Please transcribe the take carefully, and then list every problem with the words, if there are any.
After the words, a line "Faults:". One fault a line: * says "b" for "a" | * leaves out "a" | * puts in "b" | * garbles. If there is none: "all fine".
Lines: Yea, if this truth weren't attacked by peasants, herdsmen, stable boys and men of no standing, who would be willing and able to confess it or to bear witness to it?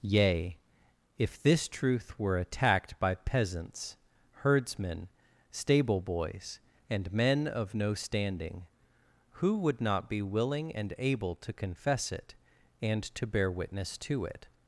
Yea, if this truth were attacked by peasants, herdsmen, stable boys and men of no standing, who would not be willing and able to confess it and to bear witness to it?
Faults:
* says "were" for "weren't"
* puts in "not"
* says "and" for "or"